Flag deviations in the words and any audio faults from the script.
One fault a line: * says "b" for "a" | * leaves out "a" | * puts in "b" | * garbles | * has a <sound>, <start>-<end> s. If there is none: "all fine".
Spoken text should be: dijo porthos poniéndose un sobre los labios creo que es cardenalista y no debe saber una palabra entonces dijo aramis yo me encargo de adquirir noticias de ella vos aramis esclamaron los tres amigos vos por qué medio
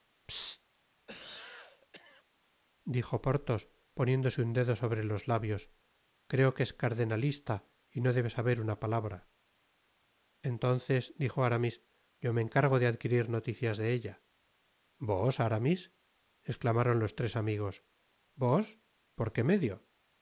* has a cough, 1.1-2.2 s
* puts in "dedo"